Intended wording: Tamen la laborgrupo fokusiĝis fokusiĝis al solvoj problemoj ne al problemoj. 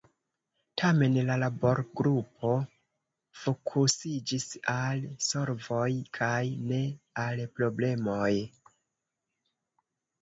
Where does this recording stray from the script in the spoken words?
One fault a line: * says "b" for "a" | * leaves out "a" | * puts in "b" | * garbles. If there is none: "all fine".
* leaves out "fokusiĝis"
* says "kaj" for "problemoj"